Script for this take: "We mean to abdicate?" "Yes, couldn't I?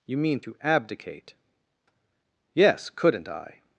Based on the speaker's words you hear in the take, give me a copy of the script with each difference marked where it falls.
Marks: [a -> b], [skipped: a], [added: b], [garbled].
["We -> You] mean to abdicate?" "Yes, couldn't I?